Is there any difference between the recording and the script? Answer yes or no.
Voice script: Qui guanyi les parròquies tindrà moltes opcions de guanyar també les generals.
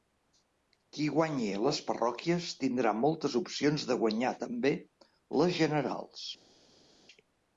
no